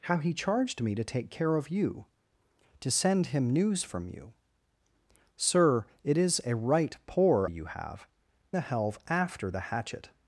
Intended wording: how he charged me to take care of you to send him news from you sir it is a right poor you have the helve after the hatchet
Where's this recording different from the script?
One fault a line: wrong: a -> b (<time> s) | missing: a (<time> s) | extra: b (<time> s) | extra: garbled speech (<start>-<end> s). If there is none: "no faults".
no faults